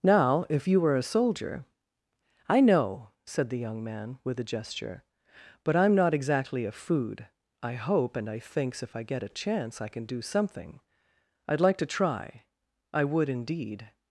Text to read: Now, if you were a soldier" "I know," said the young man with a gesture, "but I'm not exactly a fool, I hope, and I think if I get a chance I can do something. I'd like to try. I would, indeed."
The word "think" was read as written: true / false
false